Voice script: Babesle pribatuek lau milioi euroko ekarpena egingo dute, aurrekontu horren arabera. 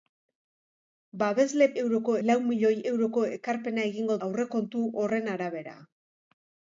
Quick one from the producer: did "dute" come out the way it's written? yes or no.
no